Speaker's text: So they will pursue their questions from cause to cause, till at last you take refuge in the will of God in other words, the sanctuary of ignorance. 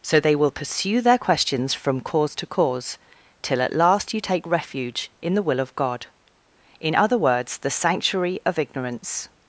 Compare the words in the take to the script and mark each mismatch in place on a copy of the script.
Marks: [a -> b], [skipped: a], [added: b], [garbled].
So they will pursue their questions from cause to cause, till at last you take refuge in the will of God in other words, the sanctuary of ignorance.